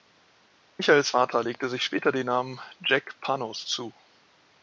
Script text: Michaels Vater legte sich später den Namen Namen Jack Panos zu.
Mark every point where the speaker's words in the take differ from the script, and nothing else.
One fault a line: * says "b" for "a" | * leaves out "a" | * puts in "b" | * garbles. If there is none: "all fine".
* leaves out "Namen"